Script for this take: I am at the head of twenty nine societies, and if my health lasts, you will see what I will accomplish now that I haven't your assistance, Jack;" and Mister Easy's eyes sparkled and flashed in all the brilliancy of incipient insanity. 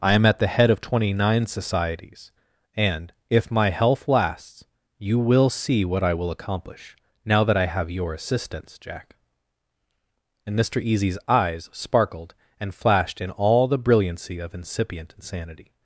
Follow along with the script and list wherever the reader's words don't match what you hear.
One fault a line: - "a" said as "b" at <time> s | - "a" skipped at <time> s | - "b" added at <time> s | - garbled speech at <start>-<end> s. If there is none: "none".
- "haven't" said as "have" at 7.7 s